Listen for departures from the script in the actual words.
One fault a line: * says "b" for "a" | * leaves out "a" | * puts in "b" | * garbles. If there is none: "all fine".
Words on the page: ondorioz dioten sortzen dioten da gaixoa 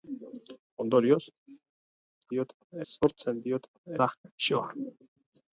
all fine